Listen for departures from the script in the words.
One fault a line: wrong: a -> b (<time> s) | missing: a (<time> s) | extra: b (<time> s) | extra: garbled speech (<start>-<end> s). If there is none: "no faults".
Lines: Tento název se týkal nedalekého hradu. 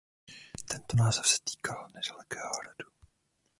no faults